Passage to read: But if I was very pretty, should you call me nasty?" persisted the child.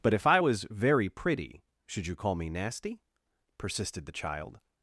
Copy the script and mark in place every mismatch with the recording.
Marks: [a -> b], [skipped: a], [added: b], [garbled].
But if I was very pretty, should you call me nasty?" persisted the child.